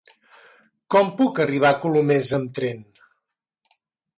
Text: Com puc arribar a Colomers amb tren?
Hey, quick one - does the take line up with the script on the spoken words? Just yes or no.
yes